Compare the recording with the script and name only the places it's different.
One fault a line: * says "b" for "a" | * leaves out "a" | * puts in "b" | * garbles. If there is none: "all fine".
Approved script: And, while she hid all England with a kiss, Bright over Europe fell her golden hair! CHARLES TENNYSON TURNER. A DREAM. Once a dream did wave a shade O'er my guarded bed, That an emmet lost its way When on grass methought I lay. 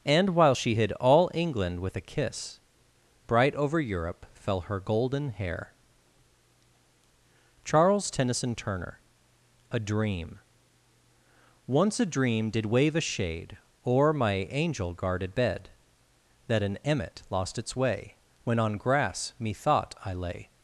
* puts in "angel"